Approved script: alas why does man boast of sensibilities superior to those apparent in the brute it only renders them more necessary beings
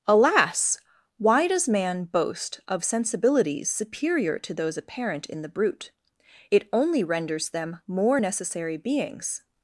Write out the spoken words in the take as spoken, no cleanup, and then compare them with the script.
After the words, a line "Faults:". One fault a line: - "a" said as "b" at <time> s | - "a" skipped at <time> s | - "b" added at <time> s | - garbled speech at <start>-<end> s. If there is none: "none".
alas why does man boast of sensibilities superior to those apparent in the brute it only renders them more necessary beings
Faults:
none